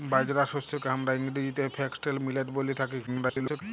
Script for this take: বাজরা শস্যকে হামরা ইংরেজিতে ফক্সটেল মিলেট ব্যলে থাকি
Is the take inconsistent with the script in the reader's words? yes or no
yes